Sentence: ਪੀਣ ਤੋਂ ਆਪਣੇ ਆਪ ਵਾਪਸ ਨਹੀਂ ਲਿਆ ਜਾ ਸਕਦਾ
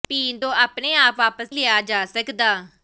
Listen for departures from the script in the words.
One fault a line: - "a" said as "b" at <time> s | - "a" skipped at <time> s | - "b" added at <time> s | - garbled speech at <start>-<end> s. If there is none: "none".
- "ਨਹੀਂ" skipped at 1.5 s